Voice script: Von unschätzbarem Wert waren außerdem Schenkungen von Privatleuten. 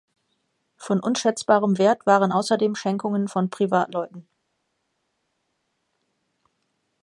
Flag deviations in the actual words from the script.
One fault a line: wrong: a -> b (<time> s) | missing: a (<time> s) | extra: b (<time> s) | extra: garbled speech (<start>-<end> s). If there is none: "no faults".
no faults